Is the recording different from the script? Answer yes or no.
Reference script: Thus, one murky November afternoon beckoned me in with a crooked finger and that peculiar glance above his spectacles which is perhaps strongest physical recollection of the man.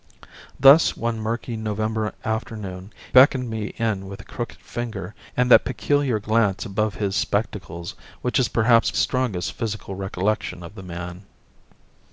no